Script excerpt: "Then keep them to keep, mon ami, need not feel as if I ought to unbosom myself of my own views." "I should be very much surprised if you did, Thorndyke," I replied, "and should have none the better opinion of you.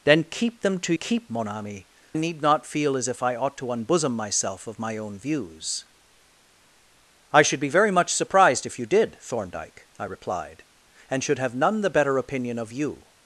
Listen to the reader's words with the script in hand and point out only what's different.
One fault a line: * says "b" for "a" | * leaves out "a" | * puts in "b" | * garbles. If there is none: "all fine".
all fine